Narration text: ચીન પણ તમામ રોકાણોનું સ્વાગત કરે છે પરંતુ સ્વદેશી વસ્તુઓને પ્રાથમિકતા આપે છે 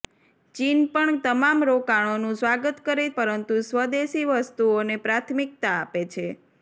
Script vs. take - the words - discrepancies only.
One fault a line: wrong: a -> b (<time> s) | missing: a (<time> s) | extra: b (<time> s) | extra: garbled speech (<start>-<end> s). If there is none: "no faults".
missing: છે (3.1 s)